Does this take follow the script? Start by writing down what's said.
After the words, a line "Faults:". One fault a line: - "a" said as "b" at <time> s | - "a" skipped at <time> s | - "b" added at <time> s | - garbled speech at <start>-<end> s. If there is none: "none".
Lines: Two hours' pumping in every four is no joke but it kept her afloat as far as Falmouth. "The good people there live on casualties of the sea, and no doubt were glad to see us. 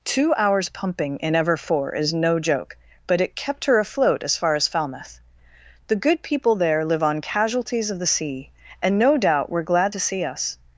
Two hours' pumping in ever four is no joke but it kept her afloat as far as Falmouth. "The good people there live on casualties of the sea, and no doubt were glad to see us.
Faults:
- "every" said as "ever" at 1.4 s